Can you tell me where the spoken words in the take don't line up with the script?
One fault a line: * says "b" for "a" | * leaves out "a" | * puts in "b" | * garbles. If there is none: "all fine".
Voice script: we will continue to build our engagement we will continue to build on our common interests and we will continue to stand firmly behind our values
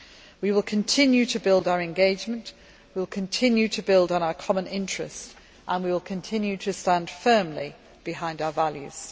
all fine